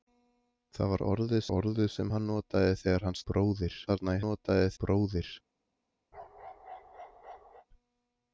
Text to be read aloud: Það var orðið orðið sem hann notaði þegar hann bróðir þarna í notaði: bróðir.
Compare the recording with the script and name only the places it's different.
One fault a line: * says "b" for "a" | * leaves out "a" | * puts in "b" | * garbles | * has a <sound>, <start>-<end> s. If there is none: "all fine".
* has a bark, 6.1-7.7 s